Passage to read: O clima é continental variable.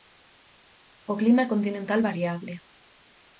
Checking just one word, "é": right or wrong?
right